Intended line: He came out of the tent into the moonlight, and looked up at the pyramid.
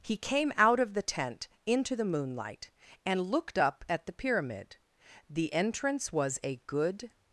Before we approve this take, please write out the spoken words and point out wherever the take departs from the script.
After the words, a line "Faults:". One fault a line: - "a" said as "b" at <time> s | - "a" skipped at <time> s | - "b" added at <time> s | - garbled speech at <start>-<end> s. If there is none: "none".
He came out of the tent into the moonlight, and looked up at the pyramid. The entrance was a good
Faults:
- "The entrance was a good" added at 5.3 s